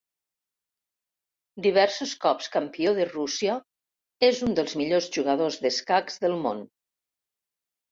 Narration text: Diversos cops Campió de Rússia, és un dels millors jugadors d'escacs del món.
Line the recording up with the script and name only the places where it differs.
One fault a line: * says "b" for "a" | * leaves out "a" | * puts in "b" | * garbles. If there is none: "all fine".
all fine